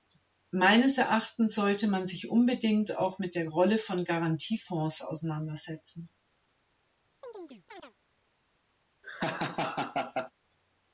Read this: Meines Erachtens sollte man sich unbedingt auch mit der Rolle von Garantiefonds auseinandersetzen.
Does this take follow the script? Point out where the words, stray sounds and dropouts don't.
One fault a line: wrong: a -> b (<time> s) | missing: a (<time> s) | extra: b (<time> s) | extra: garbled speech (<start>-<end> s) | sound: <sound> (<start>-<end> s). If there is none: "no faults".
sound: chirp (7.2-7.9 s)
sound: laugh (9.0-10.3 s)